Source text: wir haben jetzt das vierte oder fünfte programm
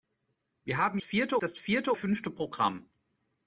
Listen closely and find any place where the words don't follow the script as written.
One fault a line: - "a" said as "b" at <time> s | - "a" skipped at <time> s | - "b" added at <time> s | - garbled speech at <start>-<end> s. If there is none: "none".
- "jetzt" said as "vierte" at 1.0 s
- "oder" skipped at 1.9 s